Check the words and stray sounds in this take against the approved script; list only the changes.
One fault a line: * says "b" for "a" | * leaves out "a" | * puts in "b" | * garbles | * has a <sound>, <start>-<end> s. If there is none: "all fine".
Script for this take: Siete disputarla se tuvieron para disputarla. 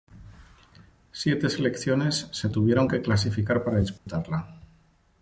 * says "selecciones" for "disputarla"
* puts in "que clasificar"
* has a dropout, 4.0-4.1 s